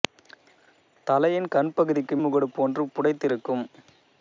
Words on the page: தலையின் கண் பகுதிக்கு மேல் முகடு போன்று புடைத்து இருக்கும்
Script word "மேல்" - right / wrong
wrong